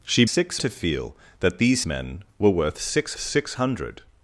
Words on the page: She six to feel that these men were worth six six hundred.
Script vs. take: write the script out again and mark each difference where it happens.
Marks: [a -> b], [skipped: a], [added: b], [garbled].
She six to feel that these men were worth six six hundred.